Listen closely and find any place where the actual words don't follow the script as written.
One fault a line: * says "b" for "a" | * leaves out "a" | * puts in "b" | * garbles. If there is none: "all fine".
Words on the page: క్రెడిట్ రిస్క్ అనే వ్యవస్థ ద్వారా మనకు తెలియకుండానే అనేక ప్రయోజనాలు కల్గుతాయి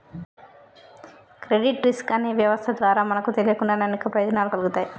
all fine